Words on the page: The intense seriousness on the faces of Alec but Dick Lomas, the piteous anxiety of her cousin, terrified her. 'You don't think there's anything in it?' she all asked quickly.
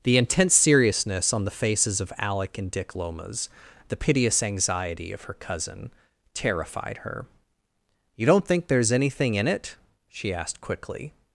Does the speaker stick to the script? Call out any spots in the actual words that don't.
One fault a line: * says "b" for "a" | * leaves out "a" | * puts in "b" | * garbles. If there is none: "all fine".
* says "and" for "but"
* leaves out "all"